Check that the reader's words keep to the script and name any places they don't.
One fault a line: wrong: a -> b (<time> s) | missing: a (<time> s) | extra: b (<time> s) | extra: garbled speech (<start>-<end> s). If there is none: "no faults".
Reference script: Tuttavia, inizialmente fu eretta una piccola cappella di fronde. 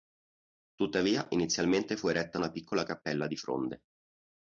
no faults